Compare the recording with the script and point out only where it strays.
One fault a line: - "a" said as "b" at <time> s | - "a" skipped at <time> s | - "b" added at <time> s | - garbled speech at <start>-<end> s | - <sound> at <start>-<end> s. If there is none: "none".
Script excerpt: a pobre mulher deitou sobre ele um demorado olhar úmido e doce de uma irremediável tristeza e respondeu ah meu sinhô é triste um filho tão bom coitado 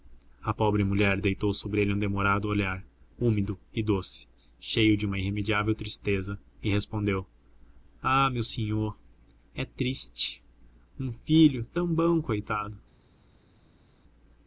- "cheio" added at 4.6 s